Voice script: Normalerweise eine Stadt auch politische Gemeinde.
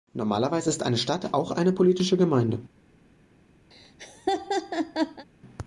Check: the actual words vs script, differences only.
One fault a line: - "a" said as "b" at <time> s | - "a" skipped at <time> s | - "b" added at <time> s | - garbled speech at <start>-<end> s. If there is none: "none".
- "ist" added at 0.7 s
- "eine" added at 1.5 s